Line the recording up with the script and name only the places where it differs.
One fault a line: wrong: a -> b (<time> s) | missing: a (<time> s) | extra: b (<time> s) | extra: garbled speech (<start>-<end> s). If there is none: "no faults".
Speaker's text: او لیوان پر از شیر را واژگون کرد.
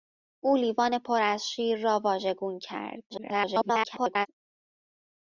extra: garbled speech (3.1-4.3 s)